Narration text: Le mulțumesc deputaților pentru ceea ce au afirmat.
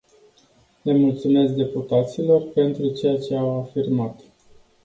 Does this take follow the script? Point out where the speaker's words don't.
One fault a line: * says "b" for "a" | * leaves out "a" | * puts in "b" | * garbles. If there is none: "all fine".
all fine